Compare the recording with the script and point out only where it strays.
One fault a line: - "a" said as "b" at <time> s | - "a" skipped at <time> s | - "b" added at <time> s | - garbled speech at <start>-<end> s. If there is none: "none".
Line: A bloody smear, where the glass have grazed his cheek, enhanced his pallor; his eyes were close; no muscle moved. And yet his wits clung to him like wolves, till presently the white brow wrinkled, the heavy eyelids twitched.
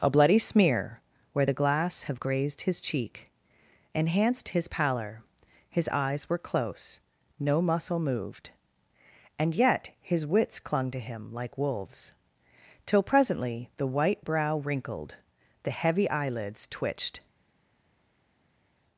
none